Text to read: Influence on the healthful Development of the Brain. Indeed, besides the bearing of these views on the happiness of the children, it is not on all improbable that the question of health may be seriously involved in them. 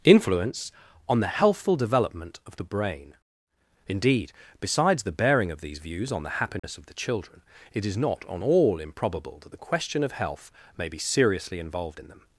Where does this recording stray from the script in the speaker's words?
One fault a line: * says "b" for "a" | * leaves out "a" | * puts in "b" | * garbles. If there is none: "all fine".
all fine